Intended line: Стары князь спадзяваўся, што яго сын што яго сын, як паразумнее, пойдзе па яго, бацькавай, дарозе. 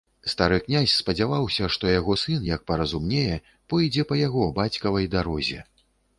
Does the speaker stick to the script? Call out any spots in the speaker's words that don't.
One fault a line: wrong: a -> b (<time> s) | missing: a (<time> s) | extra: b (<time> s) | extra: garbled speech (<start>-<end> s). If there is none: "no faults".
missing: што яго сын (2.5 s)